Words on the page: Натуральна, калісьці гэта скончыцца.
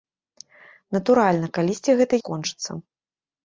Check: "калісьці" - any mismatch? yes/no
no